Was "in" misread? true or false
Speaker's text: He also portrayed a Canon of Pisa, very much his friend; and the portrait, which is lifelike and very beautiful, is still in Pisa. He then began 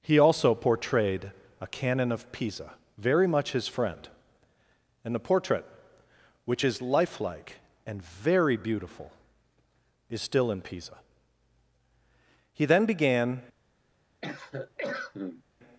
false